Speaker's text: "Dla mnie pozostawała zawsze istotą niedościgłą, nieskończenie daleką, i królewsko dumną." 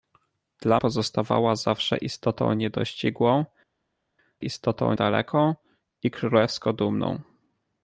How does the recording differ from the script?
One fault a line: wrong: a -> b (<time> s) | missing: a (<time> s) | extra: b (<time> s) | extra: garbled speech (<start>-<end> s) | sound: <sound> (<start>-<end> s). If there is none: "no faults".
missing: mnie (0.8 s)
wrong: nieskończenie -> istotą (4.4 s)